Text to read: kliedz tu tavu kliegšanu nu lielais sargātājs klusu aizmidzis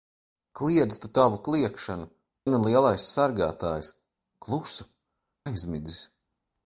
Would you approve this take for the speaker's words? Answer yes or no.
yes